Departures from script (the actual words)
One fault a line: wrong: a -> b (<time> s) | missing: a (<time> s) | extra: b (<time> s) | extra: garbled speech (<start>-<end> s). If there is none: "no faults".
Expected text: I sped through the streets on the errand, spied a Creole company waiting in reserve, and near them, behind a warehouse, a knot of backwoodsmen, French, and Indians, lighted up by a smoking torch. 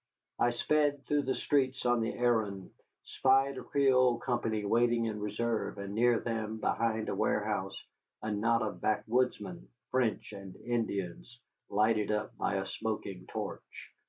no faults